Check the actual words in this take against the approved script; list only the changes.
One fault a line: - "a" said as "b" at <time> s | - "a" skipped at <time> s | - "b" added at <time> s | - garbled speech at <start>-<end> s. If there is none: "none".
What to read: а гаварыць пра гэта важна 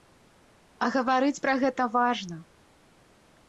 none